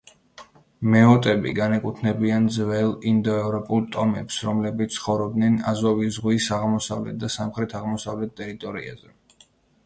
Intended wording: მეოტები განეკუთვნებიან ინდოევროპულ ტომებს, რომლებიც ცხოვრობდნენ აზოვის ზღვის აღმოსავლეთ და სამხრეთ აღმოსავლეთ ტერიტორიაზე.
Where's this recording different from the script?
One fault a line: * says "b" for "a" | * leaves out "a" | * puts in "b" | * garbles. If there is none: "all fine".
* puts in "ძველ"